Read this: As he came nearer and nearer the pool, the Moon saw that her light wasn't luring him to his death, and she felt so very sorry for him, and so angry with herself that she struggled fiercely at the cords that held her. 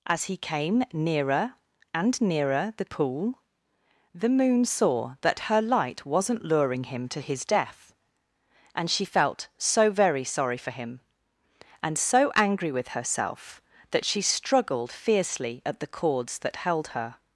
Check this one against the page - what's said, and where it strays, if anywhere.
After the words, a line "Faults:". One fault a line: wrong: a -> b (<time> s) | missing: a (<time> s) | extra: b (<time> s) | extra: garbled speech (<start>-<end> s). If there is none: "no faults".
As he came nearer and nearer the pool, the Moon saw that her light wasn't luring him to his death, and she felt so very sorry for him, and so angry with herself that she struggled fiercely at the cords that held her.
Faults:
no faults